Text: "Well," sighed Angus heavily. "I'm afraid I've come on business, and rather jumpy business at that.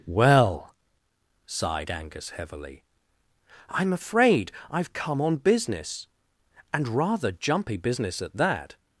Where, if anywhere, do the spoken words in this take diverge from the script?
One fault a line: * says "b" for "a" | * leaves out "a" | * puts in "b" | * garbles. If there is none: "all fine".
all fine